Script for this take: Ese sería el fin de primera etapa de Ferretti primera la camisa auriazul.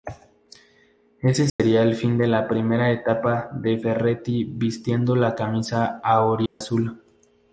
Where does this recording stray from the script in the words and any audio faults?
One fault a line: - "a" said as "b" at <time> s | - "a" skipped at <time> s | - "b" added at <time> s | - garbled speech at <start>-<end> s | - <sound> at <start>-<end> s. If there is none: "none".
- dropout at 1.5-1.6 s
- "la" added at 2.3 s
- "primera" said as "vistiendo" at 4.4 s
- dropout at 6.5-6.6 s